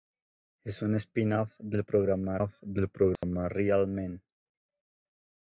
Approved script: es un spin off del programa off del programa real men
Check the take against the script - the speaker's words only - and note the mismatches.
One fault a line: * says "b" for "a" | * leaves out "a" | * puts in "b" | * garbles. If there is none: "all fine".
all fine